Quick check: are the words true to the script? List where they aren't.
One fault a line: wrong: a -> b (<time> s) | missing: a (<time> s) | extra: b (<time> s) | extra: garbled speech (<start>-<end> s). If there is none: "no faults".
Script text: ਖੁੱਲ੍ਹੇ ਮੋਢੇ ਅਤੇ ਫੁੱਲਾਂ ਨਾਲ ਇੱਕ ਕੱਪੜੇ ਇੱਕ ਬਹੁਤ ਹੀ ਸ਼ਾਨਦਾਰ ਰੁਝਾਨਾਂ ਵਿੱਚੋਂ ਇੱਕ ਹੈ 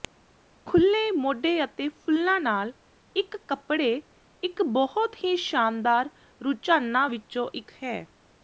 no faults